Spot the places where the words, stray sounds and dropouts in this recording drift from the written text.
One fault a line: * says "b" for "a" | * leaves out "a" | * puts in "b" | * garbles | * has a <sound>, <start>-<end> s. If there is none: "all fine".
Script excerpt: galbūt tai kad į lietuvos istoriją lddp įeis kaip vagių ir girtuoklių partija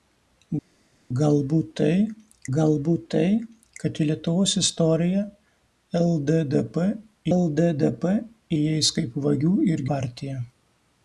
* puts in "galbūt tai"
* puts in "lddp"
* leaves out "girtuoklių"